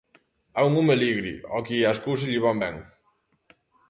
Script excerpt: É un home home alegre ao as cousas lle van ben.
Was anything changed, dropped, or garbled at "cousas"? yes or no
no